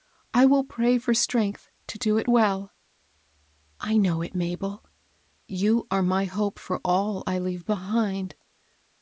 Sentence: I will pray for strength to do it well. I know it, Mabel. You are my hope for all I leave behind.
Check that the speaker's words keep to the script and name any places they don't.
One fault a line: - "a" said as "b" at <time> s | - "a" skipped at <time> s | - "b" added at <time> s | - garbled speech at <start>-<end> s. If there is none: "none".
none